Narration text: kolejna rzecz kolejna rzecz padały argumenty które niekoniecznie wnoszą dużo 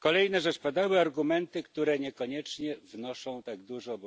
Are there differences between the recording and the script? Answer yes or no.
yes